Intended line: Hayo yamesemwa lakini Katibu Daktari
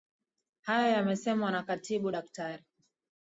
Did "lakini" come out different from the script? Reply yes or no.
yes